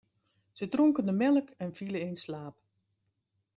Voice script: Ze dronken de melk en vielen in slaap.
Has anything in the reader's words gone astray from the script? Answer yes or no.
no